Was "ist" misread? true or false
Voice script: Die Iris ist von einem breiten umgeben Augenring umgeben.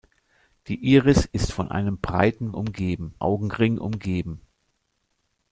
false